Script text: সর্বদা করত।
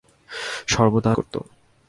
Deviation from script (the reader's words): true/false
false